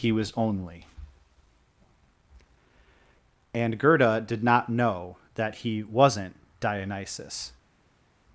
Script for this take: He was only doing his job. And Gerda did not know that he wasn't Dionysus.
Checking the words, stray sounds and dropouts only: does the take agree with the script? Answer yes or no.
no